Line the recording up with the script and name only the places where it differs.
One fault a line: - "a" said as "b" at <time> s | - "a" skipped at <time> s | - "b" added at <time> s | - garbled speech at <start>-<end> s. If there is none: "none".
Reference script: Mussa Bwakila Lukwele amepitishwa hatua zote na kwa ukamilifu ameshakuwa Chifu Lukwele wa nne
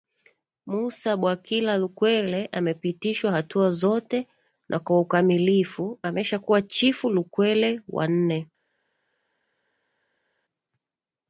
none